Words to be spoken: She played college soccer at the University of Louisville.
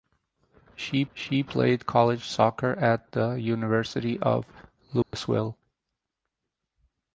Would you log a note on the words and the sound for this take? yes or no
yes